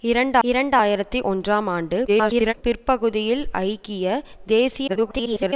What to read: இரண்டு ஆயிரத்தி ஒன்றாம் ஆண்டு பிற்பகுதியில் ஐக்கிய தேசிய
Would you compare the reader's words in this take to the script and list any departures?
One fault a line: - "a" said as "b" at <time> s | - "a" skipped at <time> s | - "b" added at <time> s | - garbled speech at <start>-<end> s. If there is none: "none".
- "இரண்டு" added at 0.4 s
- garbled speech at 2.1-2.5 s
- garbled speech at 4.9-5.5 s